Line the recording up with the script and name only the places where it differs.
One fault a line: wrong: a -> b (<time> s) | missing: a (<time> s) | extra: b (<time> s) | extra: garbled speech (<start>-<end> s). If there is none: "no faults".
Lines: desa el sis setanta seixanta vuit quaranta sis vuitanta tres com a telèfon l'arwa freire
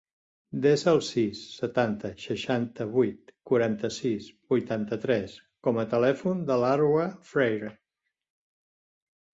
extra: de (6.5 s)